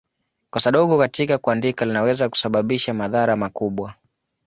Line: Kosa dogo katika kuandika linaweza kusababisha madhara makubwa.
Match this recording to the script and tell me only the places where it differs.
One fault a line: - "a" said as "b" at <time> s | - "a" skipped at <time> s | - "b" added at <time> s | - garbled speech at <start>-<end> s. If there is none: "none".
none